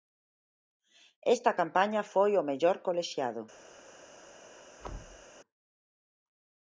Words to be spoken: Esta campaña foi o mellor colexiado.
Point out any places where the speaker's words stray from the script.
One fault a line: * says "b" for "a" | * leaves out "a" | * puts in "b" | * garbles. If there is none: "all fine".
all fine